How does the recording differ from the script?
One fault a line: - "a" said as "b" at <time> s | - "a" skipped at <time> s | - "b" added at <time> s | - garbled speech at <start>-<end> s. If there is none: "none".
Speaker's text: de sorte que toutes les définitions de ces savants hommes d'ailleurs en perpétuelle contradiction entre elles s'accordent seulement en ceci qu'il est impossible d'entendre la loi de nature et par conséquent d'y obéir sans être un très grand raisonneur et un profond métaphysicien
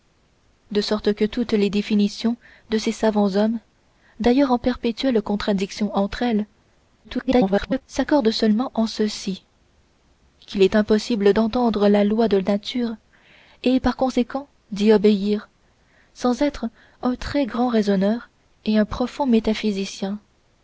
- garbled speech at 7.0-7.8 s